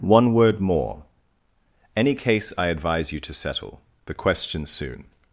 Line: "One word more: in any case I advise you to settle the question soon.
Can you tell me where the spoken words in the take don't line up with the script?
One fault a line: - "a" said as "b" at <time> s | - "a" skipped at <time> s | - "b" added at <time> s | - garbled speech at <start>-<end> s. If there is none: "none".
- "in" skipped at 1.0 s